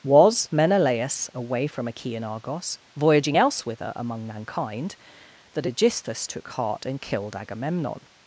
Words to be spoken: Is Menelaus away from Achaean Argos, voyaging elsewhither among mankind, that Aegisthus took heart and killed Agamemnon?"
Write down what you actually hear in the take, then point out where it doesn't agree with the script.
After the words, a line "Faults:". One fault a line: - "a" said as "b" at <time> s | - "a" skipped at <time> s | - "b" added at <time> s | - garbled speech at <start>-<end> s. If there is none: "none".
Was Menelaus away from Achaean Argos, voyaging elsewhither among mankind, that Aegisthus took heart and killed Agamemnon?"
Faults:
- "Is" said as "Was" at 0.0 s